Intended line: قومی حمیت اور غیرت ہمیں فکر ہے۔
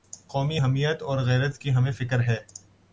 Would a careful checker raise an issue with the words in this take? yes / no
yes